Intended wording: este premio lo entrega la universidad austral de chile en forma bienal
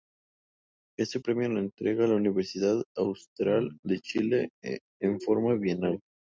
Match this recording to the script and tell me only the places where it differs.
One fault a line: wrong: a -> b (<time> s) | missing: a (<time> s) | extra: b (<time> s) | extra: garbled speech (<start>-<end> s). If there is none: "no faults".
no faults